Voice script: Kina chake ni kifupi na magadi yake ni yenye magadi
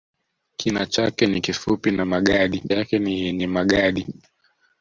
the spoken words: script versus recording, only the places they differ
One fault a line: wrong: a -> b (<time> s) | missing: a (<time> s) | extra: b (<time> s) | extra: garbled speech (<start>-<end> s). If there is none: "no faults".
no faults